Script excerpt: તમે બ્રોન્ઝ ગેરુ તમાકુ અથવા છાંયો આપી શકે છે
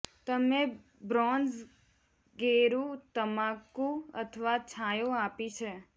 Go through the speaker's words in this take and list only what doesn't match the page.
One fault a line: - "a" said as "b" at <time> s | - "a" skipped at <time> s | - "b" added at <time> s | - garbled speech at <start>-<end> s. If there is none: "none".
- "શકે" skipped at 5.5 s